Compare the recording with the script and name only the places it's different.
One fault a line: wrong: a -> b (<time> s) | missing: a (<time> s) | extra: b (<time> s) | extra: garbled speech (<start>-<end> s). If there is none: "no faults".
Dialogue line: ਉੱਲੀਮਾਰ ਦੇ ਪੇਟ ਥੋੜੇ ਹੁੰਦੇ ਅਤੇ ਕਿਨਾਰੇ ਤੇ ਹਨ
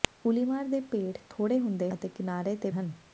no faults